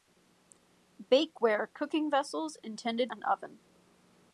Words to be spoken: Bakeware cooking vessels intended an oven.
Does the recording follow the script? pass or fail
pass